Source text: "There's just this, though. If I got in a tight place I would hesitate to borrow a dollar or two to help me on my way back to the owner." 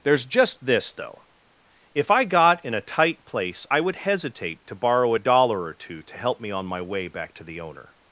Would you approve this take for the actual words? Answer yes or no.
yes